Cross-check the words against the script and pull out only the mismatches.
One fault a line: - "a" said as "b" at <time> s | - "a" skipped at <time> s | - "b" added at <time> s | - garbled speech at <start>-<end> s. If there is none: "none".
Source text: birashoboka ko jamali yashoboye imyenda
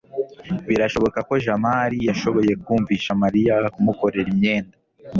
- "kumvisha mariya kumukorera" added at 2.6 s